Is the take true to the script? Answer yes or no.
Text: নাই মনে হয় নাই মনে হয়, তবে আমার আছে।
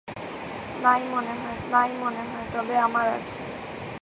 yes